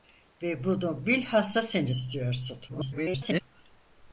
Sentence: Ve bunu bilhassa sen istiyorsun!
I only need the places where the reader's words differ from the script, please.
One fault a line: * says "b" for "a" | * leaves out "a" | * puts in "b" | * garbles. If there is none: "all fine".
* garbles